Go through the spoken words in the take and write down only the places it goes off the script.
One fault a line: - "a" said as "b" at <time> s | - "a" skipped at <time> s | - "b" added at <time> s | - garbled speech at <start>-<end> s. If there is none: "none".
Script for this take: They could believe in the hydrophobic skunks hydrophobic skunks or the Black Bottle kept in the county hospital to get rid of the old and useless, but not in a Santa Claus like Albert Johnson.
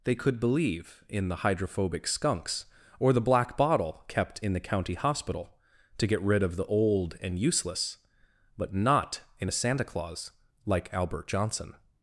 - "hydrophobic skunks" skipped at 2.6 s